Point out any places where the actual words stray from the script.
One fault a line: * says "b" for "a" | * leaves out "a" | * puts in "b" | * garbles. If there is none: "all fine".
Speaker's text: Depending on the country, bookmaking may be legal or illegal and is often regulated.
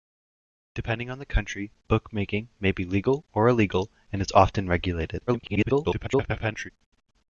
* garbles